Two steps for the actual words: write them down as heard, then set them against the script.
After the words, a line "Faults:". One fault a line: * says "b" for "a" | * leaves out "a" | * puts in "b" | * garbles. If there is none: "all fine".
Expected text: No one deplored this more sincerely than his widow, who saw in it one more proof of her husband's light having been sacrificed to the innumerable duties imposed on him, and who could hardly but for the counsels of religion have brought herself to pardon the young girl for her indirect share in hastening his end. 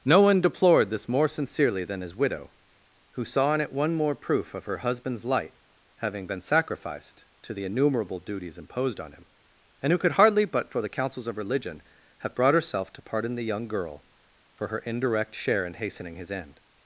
No one deplored this more sincerely than his widow, who saw in it one more proof of her husband's light having been sacrificed to the innumerable duties imposed on him, and who could hardly but for the counsels of religion have brought herself to pardon the young girl for her indirect share in hastening his end.
Faults:
all fine